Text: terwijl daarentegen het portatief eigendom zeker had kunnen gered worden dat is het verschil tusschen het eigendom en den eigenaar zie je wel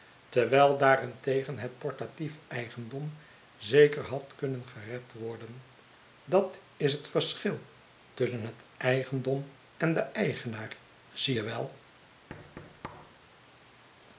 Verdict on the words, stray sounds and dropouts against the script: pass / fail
fail